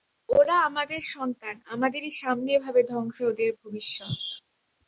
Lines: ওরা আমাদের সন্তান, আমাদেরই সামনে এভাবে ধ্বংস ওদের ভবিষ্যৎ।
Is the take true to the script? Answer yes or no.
yes